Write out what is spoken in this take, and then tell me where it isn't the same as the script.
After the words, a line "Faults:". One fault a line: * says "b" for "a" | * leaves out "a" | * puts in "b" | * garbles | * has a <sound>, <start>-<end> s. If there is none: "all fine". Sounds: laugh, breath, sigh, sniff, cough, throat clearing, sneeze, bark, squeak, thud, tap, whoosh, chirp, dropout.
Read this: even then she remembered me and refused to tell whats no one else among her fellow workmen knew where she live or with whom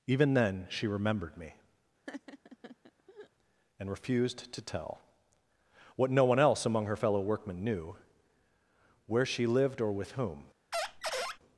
even then she remembered me and refused to tell what no one else among her fellow workmen knew where she lived or with whom
Faults:
* has a laugh, 2.1-3.3 s
* says "what" for "whats"
* says "lived" for "live"
* has a squeak, 10.7-11.4 s